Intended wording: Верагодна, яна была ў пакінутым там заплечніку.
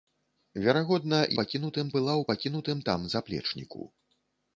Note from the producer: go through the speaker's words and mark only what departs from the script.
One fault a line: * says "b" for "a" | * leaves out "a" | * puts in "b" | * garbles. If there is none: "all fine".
* says "пакінутым" for "яна"